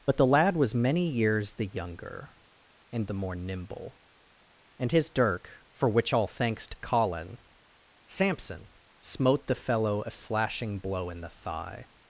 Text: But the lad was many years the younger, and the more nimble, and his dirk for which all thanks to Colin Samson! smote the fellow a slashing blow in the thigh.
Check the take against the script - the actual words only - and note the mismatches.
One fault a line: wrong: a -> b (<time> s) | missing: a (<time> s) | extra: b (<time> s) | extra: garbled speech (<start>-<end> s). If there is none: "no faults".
no faults